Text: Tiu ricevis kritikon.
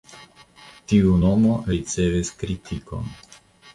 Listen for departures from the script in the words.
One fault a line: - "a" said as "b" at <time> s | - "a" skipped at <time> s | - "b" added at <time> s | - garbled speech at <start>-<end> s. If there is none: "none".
- "nomo" added at 1.2 s